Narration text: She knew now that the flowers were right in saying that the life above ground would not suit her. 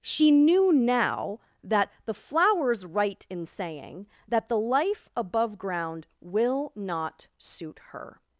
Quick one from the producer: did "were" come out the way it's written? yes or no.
no